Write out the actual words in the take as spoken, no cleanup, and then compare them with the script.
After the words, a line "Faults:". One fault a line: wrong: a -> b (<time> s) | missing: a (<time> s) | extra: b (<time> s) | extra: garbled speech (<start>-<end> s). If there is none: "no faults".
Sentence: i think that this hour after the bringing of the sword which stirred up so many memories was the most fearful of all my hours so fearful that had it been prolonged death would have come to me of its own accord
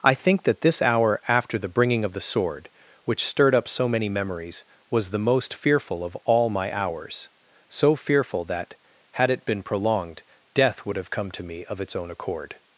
i think that this hour after the bringing of the sword which stirred up so many memories was the most fearful of all my hours so fearful that had it been prolonged death would have come to me of its own accord
Faults:
no faults